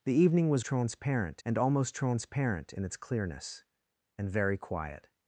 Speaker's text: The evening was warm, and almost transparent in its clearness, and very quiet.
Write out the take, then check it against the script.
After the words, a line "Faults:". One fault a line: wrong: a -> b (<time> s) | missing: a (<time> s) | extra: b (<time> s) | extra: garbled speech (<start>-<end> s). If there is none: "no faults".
The evening was transparent, and almost transparent in its clearness, and very quiet.
Faults:
wrong: warm -> transparent (0.6 s)